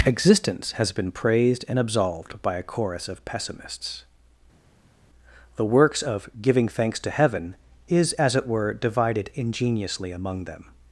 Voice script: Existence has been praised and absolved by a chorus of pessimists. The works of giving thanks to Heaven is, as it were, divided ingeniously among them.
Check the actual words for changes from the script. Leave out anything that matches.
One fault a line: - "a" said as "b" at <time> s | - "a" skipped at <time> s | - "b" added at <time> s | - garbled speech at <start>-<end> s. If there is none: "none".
none